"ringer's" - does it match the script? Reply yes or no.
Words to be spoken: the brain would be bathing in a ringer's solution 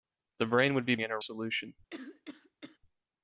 no